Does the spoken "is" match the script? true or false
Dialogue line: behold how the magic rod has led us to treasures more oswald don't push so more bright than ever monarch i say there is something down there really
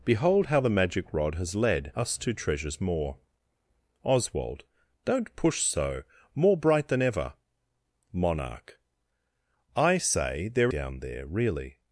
false